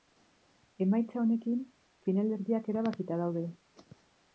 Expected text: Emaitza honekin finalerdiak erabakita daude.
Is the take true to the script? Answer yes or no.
yes